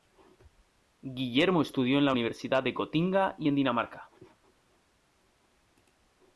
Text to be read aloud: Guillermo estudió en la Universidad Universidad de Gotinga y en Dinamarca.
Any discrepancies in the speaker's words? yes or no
yes